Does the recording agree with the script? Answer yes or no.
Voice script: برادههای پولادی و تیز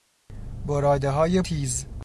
no